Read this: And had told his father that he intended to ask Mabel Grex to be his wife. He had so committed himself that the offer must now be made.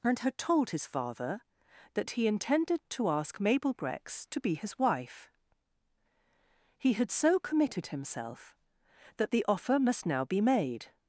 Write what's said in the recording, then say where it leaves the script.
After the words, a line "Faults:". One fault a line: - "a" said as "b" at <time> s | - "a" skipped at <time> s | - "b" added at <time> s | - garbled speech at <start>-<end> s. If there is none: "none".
And had told his father that he intended to ask Mabel Grex to be his wife. He had so committed himself that the offer must now be made.
Faults:
none